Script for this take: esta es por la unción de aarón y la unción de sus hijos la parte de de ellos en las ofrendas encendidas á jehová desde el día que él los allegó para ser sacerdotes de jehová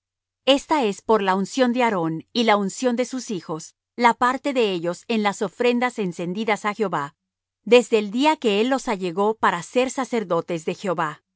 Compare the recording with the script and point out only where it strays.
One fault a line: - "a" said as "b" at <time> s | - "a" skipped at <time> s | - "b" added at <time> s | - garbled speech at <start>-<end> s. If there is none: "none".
- "de" skipped at 4.7 s